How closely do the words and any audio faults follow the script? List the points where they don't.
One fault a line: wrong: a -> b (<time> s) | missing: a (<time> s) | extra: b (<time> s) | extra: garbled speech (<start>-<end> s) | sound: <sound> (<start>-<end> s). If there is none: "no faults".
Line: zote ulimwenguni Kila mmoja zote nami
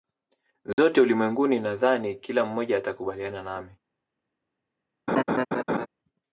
sound: dropout (0.7-0.8 s)
extra: Nadhani (1.6 s)
wrong: zote -> atakubaliana (2.8 s)
sound: laugh (5.1-5.9 s)